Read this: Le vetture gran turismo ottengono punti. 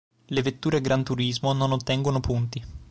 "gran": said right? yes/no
yes